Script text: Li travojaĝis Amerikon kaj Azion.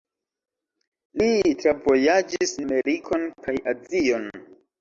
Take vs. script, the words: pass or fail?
pass